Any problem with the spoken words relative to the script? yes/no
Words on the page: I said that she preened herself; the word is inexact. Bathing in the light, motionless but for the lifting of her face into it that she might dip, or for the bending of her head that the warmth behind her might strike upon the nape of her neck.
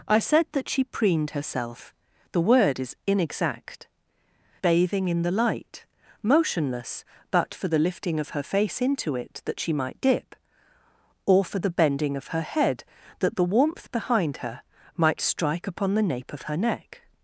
no